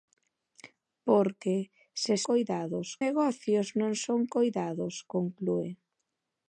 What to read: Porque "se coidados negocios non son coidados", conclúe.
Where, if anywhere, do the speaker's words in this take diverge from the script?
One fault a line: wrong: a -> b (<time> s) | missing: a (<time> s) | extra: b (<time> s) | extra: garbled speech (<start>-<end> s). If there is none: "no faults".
no faults